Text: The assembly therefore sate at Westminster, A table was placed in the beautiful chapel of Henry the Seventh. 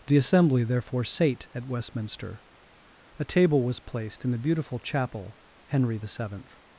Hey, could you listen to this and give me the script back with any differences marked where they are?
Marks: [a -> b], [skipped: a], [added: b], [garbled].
The assembly therefore sate at Westminster, A table was placed in the beautiful chapel [skipped: of] Henry the Seventh.